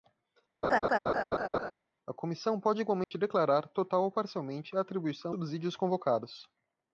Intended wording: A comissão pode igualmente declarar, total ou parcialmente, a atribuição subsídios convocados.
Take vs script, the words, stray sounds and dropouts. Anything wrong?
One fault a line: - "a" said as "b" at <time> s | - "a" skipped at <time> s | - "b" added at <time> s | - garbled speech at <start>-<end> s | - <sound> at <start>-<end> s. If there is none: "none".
- laugh at 0.6-1.7 s
- dropout at 3.0-3.1 s